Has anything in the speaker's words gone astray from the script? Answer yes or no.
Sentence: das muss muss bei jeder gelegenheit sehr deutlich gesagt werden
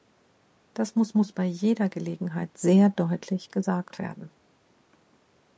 no